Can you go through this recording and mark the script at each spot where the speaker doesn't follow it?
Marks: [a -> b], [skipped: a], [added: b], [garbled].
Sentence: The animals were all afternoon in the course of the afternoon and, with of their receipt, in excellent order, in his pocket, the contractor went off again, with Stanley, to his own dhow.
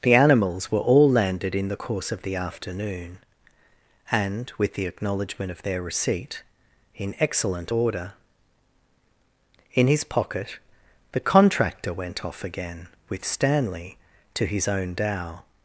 The animals were all [afternoon -> landed] in the course of the afternoon and, with [added: the acknowledgment] of their receipt, in excellent order, in his pocket, the contractor went off again, with Stanley, to his own dhow.